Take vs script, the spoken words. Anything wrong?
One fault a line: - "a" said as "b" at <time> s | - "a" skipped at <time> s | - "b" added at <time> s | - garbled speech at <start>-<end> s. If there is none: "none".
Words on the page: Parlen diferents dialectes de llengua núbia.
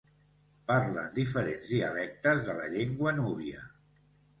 - "la" added at 2.6 s